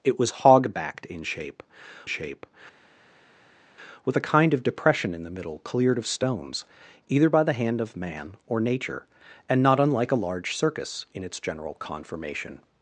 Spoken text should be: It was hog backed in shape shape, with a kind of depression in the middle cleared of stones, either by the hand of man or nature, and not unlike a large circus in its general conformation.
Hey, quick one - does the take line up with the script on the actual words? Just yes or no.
yes